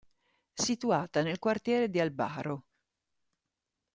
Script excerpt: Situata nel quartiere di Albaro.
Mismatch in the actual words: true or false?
false